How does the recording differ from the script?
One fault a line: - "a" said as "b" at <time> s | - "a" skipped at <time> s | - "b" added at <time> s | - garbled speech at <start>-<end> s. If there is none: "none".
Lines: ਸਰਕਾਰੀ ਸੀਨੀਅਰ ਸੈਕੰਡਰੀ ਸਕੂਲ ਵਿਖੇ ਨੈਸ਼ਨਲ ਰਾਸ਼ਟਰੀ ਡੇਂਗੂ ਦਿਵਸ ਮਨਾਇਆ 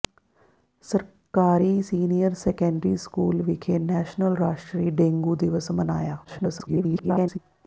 - garbled speech at 6.2-7.4 s